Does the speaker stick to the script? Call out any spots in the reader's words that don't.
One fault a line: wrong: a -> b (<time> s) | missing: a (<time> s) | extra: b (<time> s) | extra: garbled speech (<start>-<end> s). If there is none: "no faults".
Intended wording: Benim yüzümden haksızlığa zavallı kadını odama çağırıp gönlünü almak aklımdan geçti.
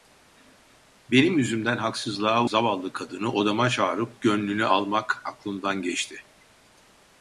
no faults